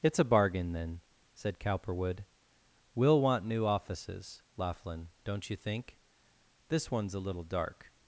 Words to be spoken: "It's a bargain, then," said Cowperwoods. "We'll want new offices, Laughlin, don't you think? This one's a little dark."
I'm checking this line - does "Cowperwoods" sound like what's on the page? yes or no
no